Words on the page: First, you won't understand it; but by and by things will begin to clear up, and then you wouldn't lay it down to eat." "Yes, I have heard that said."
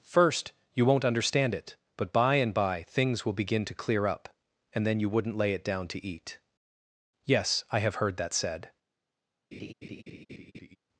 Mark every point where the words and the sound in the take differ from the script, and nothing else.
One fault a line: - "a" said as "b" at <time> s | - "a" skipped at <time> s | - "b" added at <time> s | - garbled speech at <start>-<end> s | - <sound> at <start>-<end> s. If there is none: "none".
- laugh at 9.5-10.8 s